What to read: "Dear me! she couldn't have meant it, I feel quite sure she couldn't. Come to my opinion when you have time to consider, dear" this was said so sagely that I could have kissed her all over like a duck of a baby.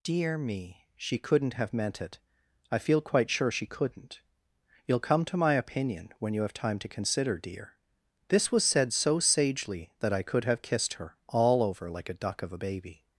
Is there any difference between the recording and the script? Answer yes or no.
yes